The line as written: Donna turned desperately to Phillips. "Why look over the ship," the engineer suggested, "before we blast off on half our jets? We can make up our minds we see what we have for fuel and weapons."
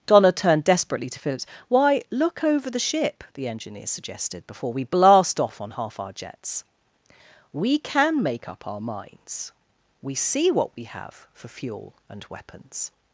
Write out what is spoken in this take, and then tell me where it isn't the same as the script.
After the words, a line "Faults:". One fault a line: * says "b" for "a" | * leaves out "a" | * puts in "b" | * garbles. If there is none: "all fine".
Donna turned desperately to Phillips. "Why look over the ship," the engineer suggested, "before we blast off on half our jets? We can make up our minds we see what we have for fuel and weapons."
Faults:
all fine